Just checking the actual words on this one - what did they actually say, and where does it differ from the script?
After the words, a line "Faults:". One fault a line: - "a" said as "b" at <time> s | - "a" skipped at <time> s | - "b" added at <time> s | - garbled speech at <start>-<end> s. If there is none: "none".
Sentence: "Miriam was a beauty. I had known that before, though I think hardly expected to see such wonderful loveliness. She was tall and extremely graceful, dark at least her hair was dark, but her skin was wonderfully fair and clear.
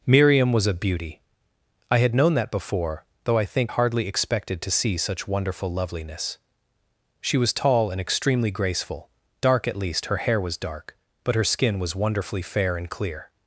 "Miriam was a beauty. I had known that before, though I think hardly expected to see such wonderful loveliness. She was tall and extremely graceful, dark at least her hair was dark, but her skin was wonderfully fair and clear.
Faults:
none